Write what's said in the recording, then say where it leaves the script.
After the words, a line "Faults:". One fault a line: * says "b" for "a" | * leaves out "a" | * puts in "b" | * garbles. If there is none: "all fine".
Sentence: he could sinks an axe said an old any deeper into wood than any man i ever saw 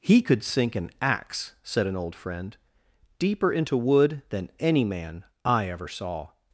he could sink an axe said an old friend deeper into wood than any man i ever saw
Faults:
* says "sink" for "sinks"
* says "friend" for "any"